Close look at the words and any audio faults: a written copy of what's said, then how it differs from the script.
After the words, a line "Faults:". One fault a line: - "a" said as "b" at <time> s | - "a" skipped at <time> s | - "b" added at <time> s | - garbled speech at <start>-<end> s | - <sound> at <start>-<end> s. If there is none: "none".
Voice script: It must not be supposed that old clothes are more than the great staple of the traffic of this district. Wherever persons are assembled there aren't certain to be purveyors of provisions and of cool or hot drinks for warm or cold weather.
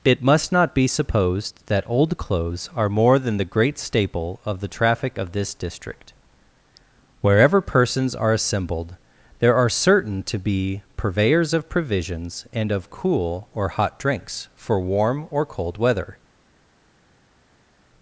It must not be supposed that old clothes are more than the great staple of the traffic of this district. Wherever persons are assembled there are certain to be purveyors of provisions and of cool or hot drinks for warm or cold weather.
Faults:
- "aren't" said as "are" at 9.6 s